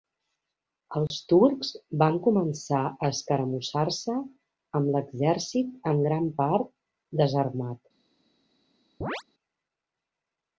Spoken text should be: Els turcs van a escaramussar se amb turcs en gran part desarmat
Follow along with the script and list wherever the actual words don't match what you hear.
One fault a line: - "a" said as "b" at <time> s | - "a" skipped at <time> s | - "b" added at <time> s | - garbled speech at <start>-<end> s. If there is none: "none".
- "començar" added at 2.3 s
- "turcs" said as "l'exèrcit" at 5.0 s